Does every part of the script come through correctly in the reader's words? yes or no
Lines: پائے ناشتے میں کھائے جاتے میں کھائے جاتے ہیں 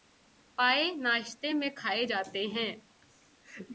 no